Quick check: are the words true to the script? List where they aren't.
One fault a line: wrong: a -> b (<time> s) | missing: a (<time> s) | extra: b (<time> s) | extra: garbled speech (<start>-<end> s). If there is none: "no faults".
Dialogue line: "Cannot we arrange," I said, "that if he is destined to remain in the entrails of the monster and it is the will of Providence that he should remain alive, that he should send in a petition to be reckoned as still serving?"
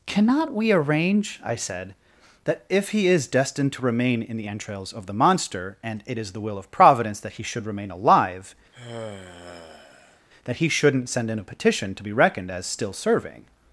wrong: should -> shouldn't (10.7 s)